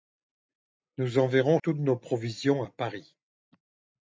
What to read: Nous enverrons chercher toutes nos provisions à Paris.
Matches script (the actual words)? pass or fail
fail